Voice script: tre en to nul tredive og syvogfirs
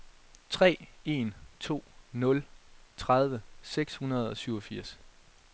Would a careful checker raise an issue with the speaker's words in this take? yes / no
yes